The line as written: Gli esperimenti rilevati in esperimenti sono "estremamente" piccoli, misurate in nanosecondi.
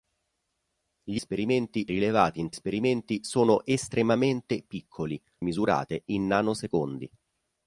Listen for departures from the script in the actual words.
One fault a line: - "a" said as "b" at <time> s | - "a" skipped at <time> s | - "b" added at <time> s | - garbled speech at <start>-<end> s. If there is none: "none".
none